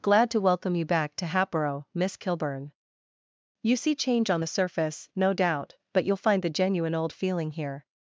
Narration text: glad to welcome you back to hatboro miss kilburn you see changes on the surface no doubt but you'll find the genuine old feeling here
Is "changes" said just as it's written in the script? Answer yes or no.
no